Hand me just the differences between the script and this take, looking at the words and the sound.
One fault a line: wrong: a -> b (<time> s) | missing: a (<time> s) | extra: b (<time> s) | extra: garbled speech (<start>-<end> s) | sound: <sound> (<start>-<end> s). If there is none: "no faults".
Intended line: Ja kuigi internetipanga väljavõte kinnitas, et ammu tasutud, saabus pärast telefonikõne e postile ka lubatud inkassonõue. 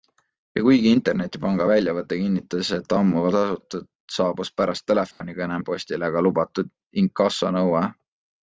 sound: dropout (5.1-5.2 s)